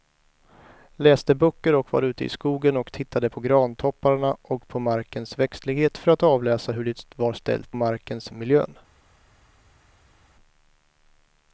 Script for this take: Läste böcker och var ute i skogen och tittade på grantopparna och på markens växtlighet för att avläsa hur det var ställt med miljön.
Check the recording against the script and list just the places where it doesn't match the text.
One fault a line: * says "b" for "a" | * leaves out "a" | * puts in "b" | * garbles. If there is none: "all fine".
* says "markens" for "med"